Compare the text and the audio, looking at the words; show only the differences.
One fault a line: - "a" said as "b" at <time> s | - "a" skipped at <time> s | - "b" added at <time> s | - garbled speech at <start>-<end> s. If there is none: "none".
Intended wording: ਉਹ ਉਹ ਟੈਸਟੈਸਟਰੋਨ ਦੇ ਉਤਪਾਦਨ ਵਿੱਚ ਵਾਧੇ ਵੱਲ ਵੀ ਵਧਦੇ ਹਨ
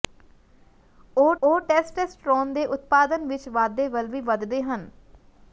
none